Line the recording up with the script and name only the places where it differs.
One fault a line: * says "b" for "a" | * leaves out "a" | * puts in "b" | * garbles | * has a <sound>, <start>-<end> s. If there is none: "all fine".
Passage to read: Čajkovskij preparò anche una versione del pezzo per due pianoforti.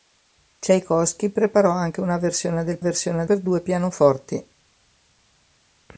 * says "versione" for "pezzo"